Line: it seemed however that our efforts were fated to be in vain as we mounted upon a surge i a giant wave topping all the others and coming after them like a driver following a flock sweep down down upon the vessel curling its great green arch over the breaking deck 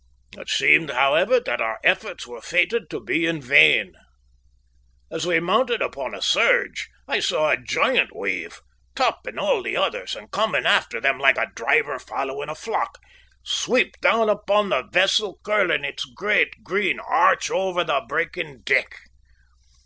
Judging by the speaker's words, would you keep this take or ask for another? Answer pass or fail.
fail